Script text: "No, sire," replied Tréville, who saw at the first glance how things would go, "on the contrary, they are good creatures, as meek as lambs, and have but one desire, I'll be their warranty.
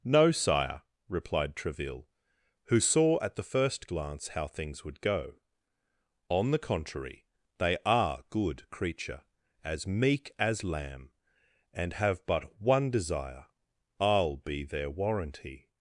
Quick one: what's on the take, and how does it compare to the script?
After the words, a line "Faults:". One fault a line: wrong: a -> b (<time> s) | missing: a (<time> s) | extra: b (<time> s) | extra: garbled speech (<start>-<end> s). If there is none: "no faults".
"No, sire," replied Tréville, who saw at the first glance how things would go, "on the contrary, they are good creature, as meek as lamb, and have but one desire, I'll be their warranty.
Faults:
wrong: creatures -> creature (8.7 s)
wrong: lambs -> lamb (10.6 s)